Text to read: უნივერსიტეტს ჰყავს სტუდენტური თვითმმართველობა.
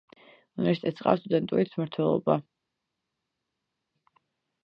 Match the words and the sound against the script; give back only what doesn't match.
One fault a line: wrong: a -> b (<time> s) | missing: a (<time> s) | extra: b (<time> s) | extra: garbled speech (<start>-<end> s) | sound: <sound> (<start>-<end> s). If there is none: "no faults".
no faults